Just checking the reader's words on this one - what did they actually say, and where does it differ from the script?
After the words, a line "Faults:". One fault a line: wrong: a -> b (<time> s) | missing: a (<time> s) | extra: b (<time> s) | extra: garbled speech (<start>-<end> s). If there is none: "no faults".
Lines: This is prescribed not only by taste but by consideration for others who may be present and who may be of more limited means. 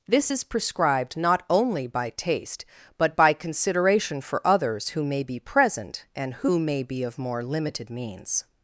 This is prescribed not only by taste but by consideration for others who may be present and who may be of more limited means.
Faults:
no faults